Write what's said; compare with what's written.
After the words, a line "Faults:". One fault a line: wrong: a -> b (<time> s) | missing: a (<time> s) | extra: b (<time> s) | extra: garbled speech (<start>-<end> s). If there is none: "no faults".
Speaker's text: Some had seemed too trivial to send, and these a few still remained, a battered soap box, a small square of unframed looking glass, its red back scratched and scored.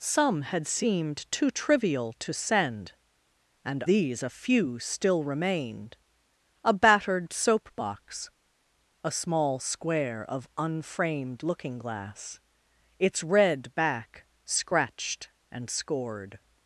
Some had seemed too trivial to send, and these a few still remained, a battered soap box, a small square of unframed looking glass, its red back scratched and scored.
Faults:
no faults